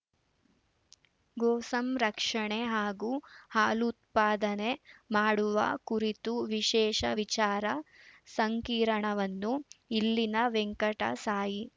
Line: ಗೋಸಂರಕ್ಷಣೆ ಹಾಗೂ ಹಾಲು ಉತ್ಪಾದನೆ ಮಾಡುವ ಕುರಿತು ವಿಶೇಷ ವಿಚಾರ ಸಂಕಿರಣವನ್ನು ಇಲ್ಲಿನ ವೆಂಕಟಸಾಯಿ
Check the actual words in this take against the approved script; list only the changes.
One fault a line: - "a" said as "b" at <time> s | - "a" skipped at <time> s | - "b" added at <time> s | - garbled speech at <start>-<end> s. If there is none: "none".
none